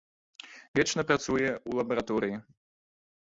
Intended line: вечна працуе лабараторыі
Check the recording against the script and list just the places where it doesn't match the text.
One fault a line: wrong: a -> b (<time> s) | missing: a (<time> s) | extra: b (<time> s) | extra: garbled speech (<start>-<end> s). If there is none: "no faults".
extra: ў (1.5 s)